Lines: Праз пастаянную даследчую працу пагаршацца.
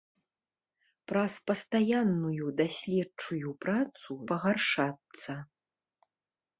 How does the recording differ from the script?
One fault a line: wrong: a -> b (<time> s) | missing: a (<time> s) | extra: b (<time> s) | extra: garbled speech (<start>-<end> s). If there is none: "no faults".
no faults